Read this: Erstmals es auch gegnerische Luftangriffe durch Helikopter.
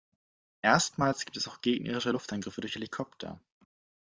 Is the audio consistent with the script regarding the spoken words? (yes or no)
no